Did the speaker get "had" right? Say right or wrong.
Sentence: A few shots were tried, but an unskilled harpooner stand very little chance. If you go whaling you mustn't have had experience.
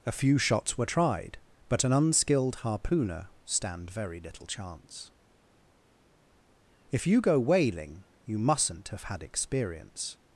right